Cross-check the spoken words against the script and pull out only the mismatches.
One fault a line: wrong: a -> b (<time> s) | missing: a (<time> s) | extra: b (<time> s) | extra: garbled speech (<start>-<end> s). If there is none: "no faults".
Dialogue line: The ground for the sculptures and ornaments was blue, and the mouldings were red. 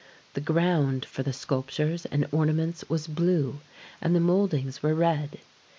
no faults